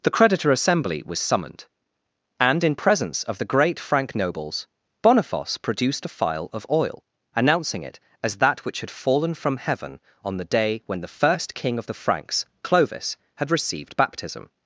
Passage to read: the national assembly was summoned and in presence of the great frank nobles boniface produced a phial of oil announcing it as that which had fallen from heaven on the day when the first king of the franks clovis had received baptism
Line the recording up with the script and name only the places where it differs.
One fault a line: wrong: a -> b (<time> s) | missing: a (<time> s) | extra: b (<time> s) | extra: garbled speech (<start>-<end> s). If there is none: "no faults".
wrong: national -> creditor (0.1 s)